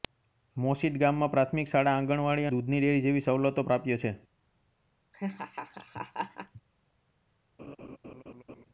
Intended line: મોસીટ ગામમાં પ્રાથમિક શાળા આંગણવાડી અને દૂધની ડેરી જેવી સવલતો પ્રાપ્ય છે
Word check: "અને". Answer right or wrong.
wrong